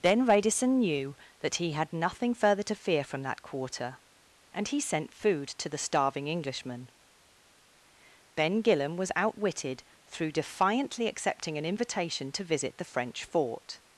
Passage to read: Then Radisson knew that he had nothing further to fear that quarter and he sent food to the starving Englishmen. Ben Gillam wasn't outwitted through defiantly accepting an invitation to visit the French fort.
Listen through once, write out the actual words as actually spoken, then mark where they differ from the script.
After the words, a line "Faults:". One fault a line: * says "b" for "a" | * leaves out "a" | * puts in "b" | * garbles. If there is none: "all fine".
Then Radisson knew that he had nothing further to fear from that quarter and he sent food to the starving Englishmen. Ben Gillam was outwitted through defiantly accepting an invitation to visit the French fort.
Faults:
* puts in "from"
* says "was" for "wasn't"